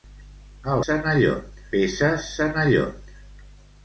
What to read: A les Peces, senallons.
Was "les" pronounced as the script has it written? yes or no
no